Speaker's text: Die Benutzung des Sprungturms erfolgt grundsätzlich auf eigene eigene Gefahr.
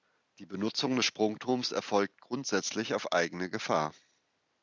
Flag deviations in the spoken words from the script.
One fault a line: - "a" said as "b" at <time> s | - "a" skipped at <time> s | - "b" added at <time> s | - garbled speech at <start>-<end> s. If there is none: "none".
- "eigene" skipped at 3.5 s